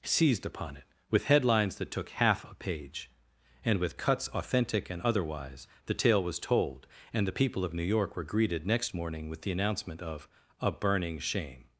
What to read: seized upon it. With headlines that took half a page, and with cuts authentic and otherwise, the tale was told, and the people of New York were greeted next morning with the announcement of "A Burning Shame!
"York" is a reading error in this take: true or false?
false